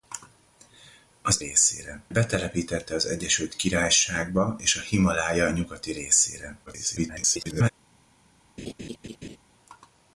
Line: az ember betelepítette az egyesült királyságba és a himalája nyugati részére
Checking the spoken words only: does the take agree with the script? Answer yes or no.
no